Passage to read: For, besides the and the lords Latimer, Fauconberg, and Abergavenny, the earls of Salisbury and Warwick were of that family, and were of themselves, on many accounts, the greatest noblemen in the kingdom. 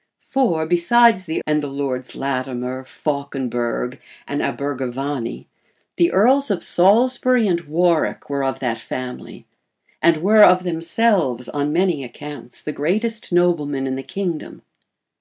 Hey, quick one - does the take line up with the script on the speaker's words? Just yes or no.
yes